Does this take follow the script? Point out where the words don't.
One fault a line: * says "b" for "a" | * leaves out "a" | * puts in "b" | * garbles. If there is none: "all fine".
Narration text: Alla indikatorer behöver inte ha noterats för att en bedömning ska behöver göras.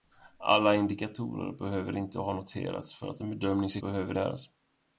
all fine